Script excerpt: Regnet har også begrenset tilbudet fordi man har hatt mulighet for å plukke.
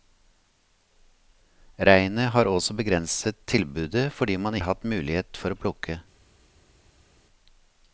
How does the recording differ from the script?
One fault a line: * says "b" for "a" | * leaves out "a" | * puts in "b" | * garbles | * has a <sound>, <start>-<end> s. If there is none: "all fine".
all fine